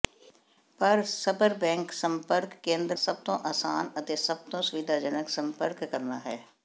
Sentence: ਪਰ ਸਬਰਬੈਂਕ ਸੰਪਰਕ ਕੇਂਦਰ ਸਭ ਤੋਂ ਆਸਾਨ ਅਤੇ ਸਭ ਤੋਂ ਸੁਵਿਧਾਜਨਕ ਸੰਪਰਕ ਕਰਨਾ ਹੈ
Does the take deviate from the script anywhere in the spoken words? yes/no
no